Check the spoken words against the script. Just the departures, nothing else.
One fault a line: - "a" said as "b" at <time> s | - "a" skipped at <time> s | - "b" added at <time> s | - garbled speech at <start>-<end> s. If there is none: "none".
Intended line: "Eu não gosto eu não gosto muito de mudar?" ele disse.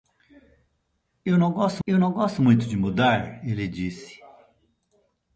none